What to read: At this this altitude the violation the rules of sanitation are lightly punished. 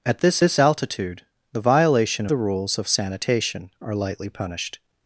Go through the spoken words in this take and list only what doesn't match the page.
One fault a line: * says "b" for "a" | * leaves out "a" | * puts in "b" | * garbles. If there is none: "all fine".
all fine